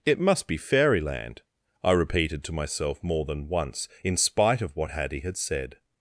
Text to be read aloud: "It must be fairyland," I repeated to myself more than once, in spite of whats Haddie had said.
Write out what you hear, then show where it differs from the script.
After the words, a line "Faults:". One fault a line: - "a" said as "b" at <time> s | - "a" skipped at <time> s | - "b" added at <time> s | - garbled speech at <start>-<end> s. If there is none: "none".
"It must be fairyland," I repeated to myself more than once, in spite of what Haddie had said.
Faults:
- "whats" said as "what" at 4.8 s